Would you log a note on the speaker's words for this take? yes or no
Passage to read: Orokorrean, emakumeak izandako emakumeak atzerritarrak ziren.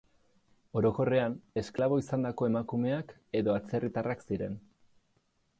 yes